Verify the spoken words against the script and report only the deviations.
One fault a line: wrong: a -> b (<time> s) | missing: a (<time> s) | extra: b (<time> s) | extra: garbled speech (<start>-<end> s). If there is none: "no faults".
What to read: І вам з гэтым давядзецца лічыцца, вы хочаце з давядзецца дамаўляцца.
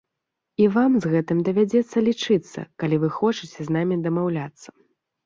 extra: калі (2.9 s)
wrong: давядзецца -> намі (3.8 s)